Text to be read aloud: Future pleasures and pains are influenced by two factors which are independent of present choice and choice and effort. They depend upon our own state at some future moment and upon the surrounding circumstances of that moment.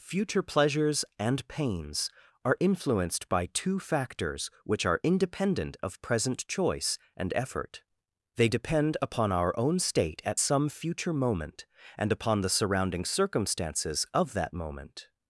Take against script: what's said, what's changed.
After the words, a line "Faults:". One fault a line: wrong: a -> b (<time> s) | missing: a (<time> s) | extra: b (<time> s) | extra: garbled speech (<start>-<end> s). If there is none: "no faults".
Future pleasures and pains are influenced by two factors which are independent of present choice and effort. They depend upon our own state at some future moment and upon the surrounding circumstances of that moment.
Faults:
missing: choice and (7.3 s)